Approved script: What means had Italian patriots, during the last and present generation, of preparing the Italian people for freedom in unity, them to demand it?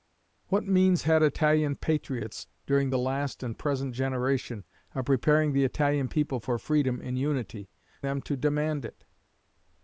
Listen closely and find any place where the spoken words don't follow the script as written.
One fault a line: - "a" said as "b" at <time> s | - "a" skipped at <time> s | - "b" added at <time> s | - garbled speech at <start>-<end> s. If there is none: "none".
none